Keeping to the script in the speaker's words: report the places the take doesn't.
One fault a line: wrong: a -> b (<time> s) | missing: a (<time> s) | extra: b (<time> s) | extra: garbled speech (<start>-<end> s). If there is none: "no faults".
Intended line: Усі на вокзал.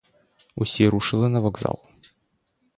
extra: рушили (0.9 s)